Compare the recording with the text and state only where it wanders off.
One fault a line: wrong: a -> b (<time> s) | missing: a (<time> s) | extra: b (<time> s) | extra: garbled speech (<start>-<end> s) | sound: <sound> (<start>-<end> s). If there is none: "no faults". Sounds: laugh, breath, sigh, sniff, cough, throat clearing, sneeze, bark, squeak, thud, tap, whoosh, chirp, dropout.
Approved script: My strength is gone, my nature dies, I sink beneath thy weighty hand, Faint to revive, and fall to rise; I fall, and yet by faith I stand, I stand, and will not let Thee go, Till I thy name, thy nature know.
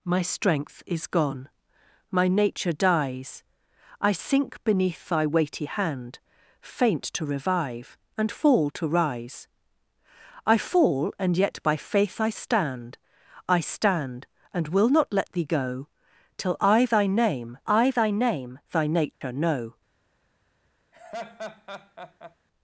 extra: I thy name (17.7 s)
sound: dropout (19.1-19.2 s)
sound: laugh (20.9-22.4 s)